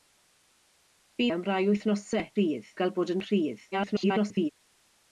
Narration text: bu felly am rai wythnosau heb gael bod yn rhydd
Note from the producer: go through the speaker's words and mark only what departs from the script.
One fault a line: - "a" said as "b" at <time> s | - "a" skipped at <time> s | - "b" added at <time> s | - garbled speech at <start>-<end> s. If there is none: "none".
- "felly" skipped at 1.3 s
- "heb" said as "rhydd" at 2.3 s
- garbled speech at 3.7-4.5 s